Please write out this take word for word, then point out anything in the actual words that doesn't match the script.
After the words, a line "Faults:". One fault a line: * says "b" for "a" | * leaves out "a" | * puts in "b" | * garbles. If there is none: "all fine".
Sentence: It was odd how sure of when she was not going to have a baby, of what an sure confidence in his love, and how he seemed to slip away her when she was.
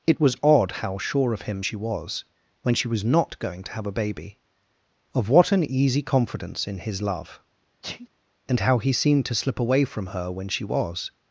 It was odd how sure of him she was when she was not going to have a baby, of what an easy confidence in his love, and how he seemed to slip away from her when she was.
Faults:
* puts in "him she was"
* says "easy" for "sure"
* puts in "from"